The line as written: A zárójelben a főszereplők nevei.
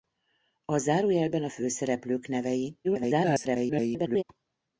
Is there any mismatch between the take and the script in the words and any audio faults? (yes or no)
yes